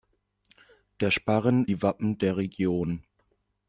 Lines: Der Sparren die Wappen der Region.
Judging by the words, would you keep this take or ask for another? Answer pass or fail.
pass